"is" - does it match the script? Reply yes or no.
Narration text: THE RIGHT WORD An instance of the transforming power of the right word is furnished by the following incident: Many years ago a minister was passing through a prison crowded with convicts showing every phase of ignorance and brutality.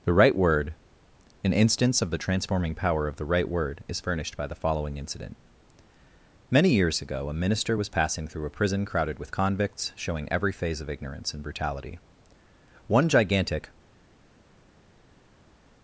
yes